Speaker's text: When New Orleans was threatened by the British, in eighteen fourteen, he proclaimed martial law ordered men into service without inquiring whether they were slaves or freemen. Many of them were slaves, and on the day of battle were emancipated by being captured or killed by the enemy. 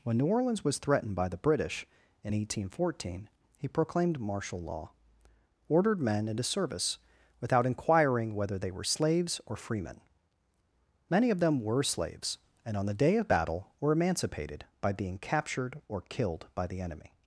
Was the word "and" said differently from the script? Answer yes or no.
no